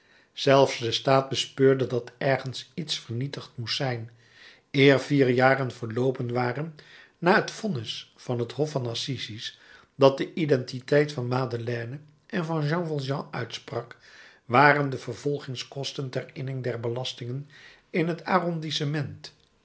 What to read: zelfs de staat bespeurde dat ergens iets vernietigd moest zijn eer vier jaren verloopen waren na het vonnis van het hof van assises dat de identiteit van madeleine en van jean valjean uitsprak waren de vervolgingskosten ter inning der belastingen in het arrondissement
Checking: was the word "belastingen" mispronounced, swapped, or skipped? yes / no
no